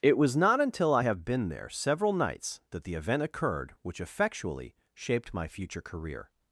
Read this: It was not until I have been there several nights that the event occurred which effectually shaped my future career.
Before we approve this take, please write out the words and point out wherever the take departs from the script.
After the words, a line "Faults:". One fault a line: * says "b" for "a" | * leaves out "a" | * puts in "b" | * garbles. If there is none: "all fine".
It was not until I have been there several nights that the event occurred which effectually shaped my future career.
Faults:
all fine